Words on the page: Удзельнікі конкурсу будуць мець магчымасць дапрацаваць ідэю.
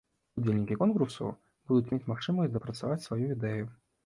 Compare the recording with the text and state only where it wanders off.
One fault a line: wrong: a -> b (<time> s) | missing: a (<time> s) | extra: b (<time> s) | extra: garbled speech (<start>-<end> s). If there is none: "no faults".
extra: сваю (3.1 s)